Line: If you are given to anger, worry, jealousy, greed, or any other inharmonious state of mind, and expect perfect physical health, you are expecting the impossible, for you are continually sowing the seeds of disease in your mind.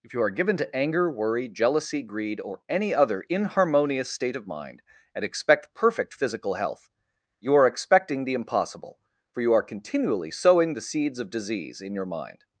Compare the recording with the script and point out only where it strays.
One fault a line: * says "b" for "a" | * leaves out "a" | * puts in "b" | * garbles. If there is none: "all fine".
all fine